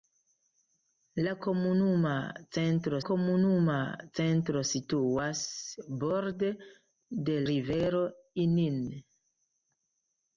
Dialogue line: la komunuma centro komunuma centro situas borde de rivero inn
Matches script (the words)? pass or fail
pass